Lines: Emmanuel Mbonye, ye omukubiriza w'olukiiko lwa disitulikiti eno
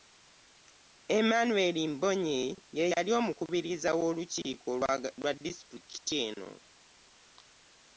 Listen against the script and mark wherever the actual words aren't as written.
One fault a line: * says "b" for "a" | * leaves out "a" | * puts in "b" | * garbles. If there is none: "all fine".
* puts in "yali"